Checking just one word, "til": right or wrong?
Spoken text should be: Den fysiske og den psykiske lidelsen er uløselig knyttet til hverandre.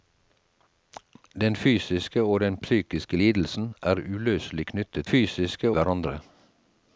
wrong